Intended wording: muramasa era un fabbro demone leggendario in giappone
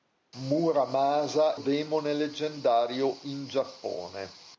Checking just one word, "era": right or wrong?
wrong